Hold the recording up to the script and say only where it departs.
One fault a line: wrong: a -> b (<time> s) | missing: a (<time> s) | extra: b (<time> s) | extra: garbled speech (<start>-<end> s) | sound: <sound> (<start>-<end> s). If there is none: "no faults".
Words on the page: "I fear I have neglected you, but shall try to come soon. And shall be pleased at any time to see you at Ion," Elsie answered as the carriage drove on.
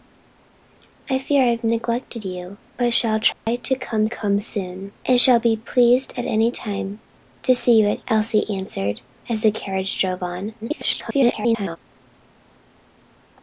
sound: dropout (3.3-3.5 s)
extra: come (4.0 s)
missing: Ion (8.0 s)
extra: garbled speech (10.6-11.8 s)